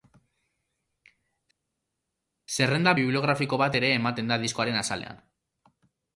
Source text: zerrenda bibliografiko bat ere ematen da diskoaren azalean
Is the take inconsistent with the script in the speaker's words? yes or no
no